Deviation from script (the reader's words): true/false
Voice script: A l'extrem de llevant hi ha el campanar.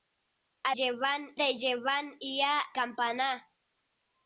true